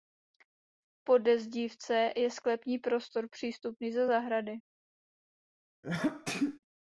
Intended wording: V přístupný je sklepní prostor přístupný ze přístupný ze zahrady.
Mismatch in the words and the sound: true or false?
true